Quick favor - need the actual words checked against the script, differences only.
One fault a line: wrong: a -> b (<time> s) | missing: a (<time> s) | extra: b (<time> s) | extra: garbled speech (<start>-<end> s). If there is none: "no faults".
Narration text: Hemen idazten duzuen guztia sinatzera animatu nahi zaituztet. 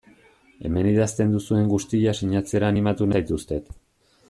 missing: nahi (3.1 s)